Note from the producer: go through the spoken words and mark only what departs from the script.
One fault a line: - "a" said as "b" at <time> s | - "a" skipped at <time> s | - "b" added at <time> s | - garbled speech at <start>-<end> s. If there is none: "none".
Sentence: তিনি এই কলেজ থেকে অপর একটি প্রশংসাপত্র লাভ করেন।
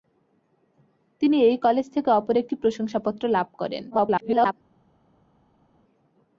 - garbled speech at 3.9-4.5 s